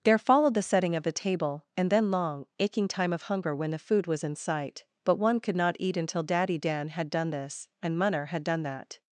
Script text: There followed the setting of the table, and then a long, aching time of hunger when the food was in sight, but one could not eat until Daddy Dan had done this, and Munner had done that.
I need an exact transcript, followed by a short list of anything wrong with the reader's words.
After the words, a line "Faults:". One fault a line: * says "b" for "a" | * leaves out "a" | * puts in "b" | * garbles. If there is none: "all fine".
There followed the setting of the table, and then long, aching time of hunger when the food was in sight, but one could not eat until Daddy Dan had done this, and Munner had done that.
Faults:
* leaves out "a"